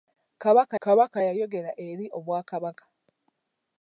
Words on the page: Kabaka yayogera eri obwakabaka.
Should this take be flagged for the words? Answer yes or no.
yes